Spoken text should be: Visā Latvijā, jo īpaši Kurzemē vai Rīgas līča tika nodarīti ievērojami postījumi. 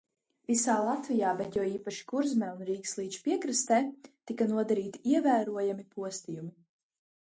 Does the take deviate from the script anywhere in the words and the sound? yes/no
yes